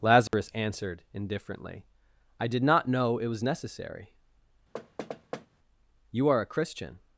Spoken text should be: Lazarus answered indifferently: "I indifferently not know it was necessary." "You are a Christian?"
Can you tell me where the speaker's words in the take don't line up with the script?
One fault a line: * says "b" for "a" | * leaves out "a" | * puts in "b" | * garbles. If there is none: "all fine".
* says "did" for "indifferently"